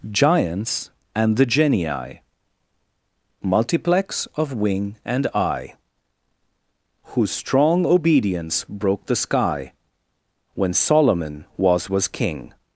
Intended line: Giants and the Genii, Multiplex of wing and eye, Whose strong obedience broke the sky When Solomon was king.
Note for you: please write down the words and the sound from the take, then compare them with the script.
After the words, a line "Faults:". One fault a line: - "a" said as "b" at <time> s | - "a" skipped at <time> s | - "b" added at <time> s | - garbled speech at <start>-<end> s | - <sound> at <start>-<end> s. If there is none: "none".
Giants and the Genii, Multiplex of wing and eye, Whose strong obedience broke the sky When Solomon was was king.
Faults:
- "was" added at 11.9 s